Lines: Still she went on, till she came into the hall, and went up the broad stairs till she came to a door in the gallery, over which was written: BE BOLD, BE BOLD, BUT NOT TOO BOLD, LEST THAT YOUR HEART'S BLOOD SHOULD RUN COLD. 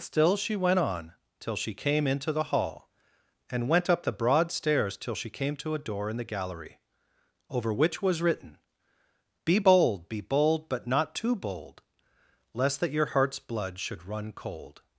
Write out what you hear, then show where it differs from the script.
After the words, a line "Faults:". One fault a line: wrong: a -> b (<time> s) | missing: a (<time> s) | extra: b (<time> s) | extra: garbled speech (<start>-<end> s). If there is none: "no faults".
Still she went on, till she came into the hall, and went up the broad stairs till she came to a door in the gallery, over which was written: BE BOLD, BE BOLD, BUT NOT TOO BOLD, LEST THAT YOUR HEART'S BLOOD SHOULD RUN COLD.
Faults:
no faults